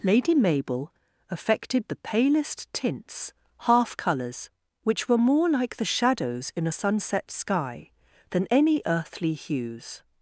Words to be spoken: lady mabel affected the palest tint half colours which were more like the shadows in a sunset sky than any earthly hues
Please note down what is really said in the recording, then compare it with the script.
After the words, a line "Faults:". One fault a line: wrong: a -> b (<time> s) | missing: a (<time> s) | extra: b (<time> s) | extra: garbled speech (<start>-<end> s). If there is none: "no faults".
lady mabel affected the palest tints half colours which were more like the shadows in a sunset sky than any earthly hues
Faults:
wrong: tint -> tints (2.7 s)